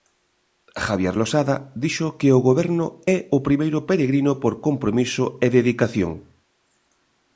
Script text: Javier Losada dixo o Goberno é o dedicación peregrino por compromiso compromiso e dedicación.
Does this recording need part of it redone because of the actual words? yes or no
yes